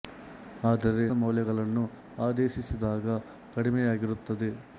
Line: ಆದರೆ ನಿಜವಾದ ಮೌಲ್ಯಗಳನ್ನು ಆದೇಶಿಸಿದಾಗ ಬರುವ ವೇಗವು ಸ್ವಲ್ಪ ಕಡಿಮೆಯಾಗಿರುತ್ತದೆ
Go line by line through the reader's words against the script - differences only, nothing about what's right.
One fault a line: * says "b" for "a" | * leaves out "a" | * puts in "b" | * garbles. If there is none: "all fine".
* leaves out "ನಿಜವಾದ"
* leaves out "ಬರುವ ವೇಗವು ಸ್ವಲ್ಪ"